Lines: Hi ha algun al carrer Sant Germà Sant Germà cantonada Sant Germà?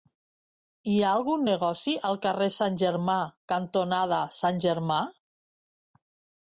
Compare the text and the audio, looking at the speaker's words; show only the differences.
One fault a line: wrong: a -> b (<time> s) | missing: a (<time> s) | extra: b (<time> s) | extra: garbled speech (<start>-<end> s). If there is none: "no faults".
extra: negoci (1.5 s)
missing: Sant Germà (3.2 s)